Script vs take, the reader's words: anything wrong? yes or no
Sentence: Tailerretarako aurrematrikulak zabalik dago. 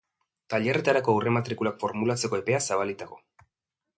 yes